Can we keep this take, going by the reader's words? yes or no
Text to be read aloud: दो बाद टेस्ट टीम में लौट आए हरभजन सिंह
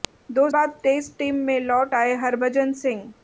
yes